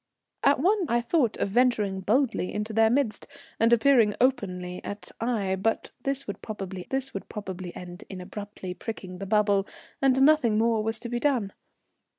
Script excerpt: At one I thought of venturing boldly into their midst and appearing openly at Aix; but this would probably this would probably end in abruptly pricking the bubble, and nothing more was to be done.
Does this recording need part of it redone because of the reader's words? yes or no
no